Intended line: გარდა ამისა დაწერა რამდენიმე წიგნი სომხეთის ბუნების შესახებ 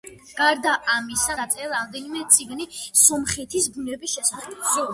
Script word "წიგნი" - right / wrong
right